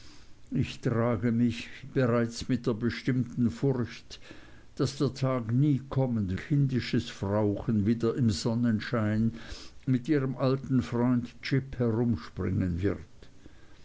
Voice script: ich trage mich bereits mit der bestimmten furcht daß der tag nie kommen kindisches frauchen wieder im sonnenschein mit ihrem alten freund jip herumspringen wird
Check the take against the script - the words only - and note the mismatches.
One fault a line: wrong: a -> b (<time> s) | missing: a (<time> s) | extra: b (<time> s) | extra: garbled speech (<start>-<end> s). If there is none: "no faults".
no faults